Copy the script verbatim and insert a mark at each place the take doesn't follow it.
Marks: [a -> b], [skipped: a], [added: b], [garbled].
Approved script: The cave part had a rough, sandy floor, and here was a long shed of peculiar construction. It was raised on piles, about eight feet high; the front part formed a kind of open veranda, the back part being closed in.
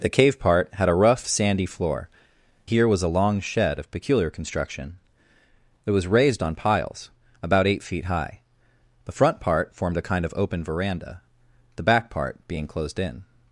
The cave part had a rough, sandy floor, [skipped: and] here was a long shed of peculiar construction. It was raised on piles, about eight feet high; the front part formed a kind of open veranda, the back part being closed in.